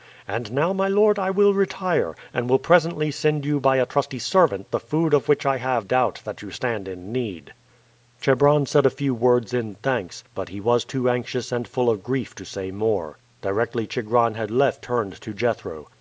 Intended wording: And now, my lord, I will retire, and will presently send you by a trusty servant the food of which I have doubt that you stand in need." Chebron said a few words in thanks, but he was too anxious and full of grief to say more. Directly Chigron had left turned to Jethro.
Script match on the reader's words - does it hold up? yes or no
yes